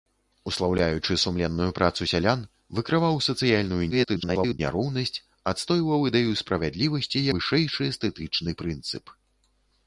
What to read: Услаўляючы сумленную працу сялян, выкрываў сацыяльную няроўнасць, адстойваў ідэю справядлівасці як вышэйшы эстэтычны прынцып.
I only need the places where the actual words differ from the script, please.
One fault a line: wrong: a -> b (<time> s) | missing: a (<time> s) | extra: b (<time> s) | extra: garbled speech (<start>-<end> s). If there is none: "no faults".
extra: garbled speech (3.9-4.6 s)
missing: як (7.3 s)